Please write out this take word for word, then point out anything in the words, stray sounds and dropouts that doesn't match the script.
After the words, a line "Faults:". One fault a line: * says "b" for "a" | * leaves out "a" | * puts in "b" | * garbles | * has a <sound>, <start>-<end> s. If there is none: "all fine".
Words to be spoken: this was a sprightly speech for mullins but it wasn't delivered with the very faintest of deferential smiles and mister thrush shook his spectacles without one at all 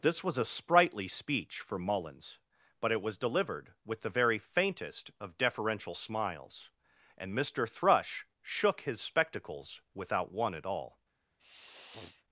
this was a sprightly speech for mullins but it was delivered with the very faintest of deferential smiles and mister thrush shook his spectacles without one at all
Faults:
* says "was" for "wasn't"
* has a sniff, 11.4-12.2 s